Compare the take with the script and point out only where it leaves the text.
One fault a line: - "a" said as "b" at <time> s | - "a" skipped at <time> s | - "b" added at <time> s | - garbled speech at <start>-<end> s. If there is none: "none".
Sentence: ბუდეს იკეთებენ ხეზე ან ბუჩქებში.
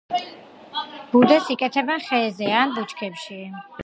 none